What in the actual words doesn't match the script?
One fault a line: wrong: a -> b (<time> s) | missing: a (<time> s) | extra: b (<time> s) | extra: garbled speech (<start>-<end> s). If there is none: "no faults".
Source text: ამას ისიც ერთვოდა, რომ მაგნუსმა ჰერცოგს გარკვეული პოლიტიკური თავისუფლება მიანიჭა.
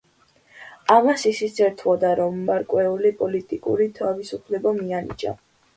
missing: მაგნუსმა ჰერცოგს (2.4 s)